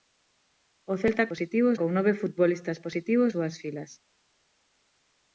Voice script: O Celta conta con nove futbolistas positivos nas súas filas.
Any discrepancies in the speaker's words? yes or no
yes